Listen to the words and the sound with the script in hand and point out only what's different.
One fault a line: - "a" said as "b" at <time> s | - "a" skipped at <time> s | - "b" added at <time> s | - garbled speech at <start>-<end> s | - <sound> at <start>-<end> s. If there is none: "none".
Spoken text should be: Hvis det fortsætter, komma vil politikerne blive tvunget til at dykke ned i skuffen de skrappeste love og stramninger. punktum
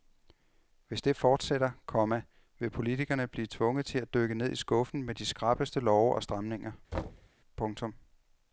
- "med" added at 5.0 s
- thud at 6.9-7.3 s